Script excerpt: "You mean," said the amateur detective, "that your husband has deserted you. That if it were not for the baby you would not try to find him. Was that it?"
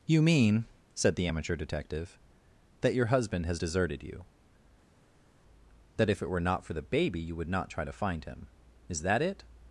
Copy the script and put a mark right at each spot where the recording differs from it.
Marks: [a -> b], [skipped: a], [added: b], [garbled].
"You mean," said the amateur detective, "that your husband has deserted you. That if it were not for the baby you would not try to find him. [Was -> Is] that it?"